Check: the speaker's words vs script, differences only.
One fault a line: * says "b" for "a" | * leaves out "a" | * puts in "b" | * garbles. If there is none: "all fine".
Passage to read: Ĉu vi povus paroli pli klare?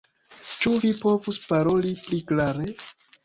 all fine